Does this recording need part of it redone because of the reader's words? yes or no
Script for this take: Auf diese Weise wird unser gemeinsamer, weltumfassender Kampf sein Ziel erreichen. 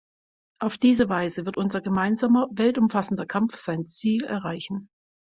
no